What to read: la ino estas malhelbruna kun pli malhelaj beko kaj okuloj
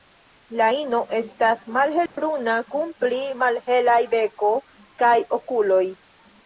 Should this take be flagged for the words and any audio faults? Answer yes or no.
yes